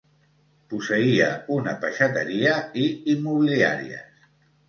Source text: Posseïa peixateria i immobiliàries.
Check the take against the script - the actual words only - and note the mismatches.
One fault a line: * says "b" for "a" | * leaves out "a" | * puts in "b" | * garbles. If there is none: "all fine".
* puts in "una"